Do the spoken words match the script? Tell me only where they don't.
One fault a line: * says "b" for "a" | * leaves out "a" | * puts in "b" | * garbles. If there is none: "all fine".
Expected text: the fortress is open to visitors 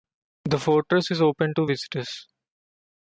all fine